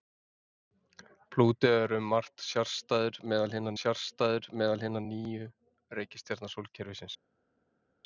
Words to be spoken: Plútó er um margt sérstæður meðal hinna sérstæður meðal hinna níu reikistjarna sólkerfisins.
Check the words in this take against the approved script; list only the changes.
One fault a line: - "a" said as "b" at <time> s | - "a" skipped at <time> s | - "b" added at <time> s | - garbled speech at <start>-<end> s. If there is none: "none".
none